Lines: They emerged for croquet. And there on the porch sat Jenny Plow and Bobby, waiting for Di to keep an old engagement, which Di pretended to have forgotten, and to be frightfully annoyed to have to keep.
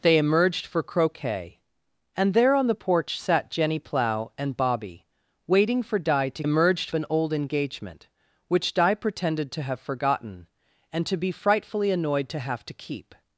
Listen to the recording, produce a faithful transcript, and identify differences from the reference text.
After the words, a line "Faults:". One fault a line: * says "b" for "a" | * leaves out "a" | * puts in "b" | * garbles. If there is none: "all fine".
They emerged for croquet. And there on the porch sat Jenny Plow and Bobby, waiting for Di to emerged an old engagement, which Di pretended to have forgotten, and to be frightfully annoyed to have to keep.
Faults:
* says "emerged" for "keep"